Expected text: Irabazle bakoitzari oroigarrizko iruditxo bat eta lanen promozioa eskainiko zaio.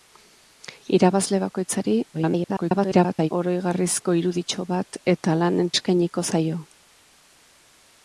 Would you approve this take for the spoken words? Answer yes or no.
no